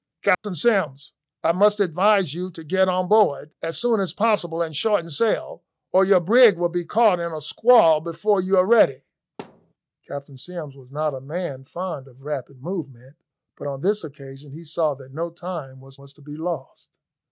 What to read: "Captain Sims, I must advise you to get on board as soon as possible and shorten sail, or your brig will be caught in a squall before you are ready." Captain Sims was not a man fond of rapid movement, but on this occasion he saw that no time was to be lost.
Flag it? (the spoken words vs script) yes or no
yes